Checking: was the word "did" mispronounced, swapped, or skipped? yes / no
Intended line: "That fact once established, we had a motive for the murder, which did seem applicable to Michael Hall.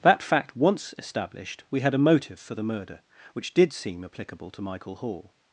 no